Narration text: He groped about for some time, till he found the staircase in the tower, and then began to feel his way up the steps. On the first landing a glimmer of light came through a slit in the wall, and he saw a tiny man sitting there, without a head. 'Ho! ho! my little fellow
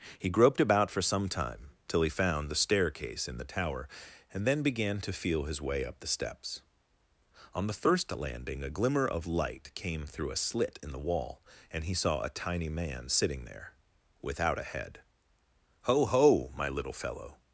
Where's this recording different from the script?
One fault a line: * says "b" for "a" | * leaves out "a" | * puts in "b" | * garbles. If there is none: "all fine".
all fine